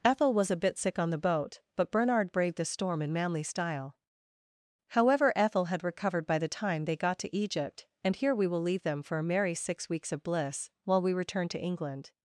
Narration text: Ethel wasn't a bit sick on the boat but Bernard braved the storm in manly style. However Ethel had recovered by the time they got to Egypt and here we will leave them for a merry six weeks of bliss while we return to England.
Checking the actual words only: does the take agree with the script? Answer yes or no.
no